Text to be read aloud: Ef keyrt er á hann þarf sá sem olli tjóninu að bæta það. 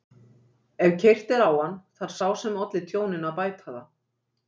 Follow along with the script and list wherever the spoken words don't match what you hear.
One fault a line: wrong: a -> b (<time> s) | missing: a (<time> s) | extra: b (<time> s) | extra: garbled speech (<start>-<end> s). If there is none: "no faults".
no faults